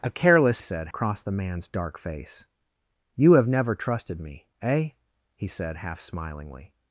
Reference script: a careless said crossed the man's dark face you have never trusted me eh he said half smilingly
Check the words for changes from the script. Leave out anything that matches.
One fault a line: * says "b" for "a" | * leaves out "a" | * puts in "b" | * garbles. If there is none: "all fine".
all fine